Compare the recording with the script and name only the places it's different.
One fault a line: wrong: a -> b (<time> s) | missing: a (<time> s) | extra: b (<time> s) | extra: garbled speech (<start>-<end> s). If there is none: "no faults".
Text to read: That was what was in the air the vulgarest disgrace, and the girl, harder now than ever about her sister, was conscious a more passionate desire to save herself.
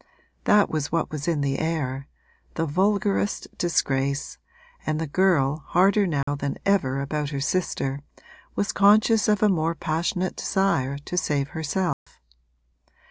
extra: of (9.3 s)